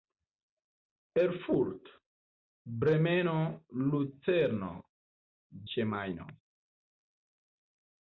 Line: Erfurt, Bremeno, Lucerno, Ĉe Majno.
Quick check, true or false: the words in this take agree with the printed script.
true